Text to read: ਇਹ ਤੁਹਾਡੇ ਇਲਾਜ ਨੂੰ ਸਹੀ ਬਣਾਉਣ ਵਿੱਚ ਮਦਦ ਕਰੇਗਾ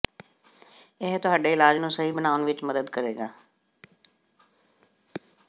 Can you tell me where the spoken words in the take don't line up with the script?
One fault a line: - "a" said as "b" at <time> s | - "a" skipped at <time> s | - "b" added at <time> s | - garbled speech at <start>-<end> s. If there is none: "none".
none